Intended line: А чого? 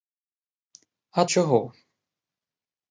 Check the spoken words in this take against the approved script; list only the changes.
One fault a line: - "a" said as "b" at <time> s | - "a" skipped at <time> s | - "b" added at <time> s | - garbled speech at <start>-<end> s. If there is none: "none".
none